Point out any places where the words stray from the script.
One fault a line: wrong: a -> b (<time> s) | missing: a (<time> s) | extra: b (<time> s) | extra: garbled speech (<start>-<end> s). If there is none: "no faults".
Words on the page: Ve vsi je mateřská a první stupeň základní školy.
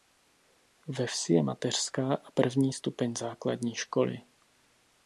no faults